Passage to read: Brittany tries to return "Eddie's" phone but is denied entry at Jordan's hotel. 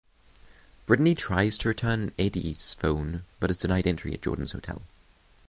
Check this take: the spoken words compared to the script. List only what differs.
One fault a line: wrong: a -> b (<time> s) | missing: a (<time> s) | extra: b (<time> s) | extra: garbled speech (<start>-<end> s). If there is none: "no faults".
no faults